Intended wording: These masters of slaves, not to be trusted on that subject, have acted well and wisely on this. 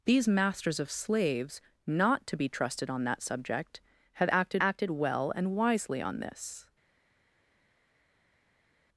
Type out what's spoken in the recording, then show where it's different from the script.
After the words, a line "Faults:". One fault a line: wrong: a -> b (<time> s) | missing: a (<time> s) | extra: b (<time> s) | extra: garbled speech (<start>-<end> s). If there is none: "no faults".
These masters of slaves, not to be trusted on that subject, have acted acted well and wisely on this.
Faults:
extra: acted (4.6 s)